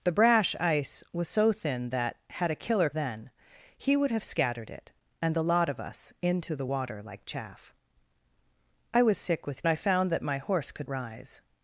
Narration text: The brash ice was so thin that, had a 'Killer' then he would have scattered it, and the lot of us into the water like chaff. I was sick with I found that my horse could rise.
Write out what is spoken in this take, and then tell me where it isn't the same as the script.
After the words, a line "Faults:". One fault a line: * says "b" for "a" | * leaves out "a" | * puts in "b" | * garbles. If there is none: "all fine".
The brash ice was so thin that, had a 'Killer' then he would have scattered it, and the lot of us into the water like chaff. I was sick with I found that my horse could rise.
Faults:
all fine